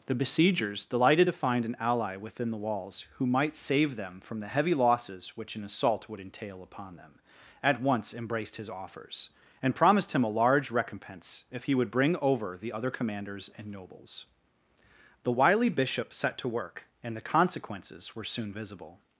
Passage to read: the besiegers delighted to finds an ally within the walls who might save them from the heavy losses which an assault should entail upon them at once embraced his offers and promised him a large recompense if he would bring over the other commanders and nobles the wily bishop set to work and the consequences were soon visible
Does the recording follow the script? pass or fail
fail